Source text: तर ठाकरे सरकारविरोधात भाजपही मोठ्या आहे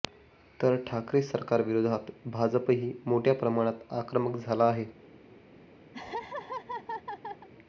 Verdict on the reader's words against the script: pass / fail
fail